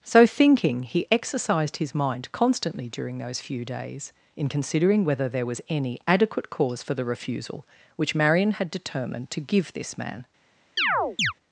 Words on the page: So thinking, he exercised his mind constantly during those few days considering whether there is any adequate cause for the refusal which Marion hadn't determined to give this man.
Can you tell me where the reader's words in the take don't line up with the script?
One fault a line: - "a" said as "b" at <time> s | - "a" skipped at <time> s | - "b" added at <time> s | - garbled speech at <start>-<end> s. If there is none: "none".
- "in" added at 4.3 s
- "is" said as "was" at 5.4 s
- "hadn't" said as "had" at 8.5 s